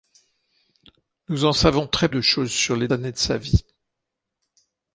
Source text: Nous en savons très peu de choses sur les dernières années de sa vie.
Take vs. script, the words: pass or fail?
fail